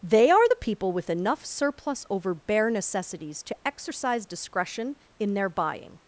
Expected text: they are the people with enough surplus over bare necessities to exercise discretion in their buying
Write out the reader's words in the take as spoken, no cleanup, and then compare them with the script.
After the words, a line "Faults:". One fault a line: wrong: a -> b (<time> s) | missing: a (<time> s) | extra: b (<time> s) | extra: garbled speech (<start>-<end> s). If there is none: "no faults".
they are the people with enough surplus over bare necessities to exercise discretion in their buying
Faults:
no faults